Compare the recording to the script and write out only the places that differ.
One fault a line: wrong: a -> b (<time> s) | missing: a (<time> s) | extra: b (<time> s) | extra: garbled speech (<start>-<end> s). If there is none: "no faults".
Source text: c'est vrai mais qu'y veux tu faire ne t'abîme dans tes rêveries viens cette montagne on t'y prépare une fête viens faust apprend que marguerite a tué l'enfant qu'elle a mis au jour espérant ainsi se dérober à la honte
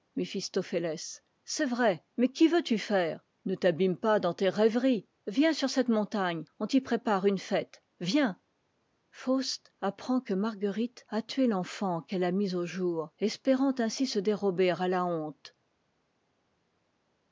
extra: pas (4.0 s)
extra: sur (5.5 s)